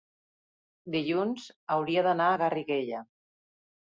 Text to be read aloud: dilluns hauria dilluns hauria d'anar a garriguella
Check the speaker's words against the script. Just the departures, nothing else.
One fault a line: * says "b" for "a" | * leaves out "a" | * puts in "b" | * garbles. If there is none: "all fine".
* leaves out "dilluns hauria"